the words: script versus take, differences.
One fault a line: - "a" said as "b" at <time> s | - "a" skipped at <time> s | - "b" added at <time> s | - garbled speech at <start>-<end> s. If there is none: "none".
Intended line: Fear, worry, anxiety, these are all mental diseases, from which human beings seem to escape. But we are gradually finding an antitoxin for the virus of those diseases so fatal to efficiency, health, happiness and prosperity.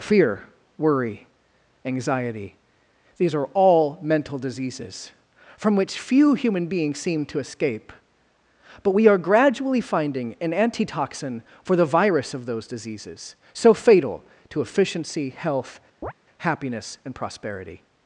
- "few" added at 6.0 s